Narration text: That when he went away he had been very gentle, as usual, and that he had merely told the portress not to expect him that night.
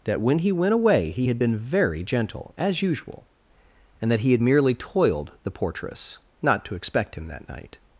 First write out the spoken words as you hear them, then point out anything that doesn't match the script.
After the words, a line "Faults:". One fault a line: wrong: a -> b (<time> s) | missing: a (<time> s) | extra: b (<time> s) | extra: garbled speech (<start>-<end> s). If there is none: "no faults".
That when he went away he had been very gentle, as usual, and that he had merely toiled the portress not to expect him that night.
Faults:
wrong: told -> toiled (4.7 s)